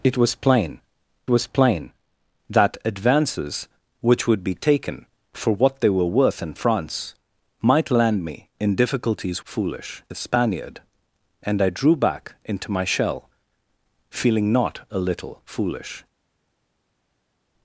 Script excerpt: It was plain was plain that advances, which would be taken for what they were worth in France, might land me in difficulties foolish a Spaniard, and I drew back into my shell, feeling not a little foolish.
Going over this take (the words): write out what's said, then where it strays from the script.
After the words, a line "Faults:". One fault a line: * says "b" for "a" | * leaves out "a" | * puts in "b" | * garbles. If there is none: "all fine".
It was plain was plain that advances, which would be taken for what they were worth in France, might land me in difficulties foolish a Spaniard, and I drew back into my shell, feeling not a little foolish.
Faults:
all fine